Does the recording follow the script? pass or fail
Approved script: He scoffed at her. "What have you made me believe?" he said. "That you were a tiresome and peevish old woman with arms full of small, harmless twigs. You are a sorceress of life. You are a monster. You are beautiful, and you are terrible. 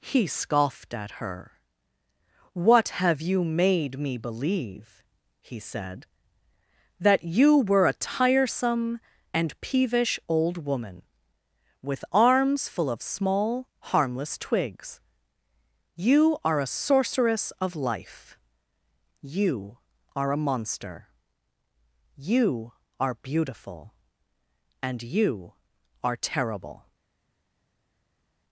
pass